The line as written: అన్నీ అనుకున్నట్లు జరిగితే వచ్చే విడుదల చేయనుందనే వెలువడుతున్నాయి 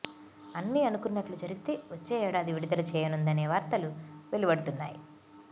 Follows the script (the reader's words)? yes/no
no